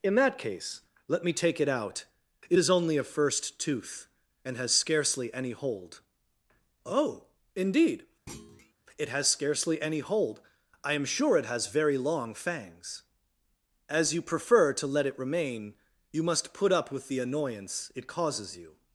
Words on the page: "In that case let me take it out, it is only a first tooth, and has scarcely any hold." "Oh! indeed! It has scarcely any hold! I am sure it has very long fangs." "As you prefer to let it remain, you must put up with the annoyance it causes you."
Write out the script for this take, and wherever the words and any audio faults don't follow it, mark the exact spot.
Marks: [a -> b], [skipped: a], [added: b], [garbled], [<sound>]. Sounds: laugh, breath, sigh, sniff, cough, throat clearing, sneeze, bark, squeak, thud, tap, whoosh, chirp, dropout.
"In that case let me take it out, it is only a first tooth, and has scarcely any hold." "Oh! indeed! [thud] It has scarcely any hold! I am sure it has very long fangs." "As you prefer to let it remain, you must put up with the annoyance it causes you."